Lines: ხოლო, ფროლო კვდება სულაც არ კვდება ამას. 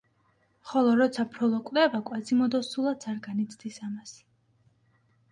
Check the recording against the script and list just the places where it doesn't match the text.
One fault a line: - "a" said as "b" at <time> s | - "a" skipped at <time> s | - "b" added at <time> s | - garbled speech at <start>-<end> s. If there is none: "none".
- "როცა" added at 1.0 s
- "კვაზიმოდო" added at 2.1 s
- "კვდება" said as "განიცდის" at 3.3 s